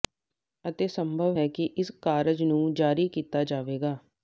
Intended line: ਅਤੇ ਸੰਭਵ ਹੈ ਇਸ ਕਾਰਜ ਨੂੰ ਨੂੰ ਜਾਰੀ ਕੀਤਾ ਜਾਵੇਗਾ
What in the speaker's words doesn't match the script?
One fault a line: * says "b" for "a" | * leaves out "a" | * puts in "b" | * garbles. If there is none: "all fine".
* puts in "ਕਿ"
* leaves out "ਨੂੰ"